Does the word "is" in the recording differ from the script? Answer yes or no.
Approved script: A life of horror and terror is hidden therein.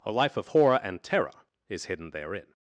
no